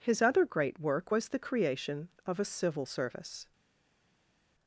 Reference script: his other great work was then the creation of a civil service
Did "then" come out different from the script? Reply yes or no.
yes